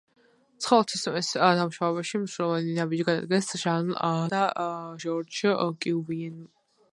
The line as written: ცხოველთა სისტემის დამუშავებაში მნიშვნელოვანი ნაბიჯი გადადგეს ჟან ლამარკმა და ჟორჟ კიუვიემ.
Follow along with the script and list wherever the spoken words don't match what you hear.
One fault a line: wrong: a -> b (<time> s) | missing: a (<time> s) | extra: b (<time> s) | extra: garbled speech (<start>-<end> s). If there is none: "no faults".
missing: ლამარკმა (3.9 s)